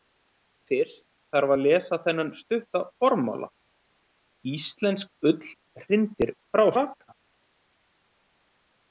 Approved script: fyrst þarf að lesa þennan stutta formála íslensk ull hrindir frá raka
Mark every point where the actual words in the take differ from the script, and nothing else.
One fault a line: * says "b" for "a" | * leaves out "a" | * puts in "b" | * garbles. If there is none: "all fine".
all fine